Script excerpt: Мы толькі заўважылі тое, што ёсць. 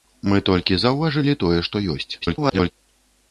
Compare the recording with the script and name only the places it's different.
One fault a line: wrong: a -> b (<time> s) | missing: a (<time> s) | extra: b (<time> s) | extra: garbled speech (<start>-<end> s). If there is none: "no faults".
extra: garbled speech (2.2-2.7 s)